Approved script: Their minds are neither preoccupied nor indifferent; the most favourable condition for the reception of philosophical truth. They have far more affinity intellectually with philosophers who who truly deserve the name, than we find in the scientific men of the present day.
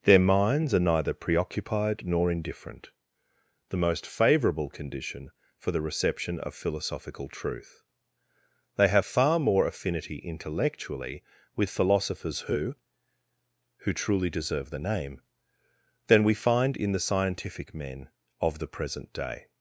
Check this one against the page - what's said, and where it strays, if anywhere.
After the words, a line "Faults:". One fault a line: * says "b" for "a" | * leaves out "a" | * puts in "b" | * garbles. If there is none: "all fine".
Their minds are neither preoccupied nor indifferent; the most favourable condition for the reception of philosophical truth. They have far more affinity intellectually with philosophers who who truly deserve the name, than we find in the scientific men of the present day.
Faults:
all fine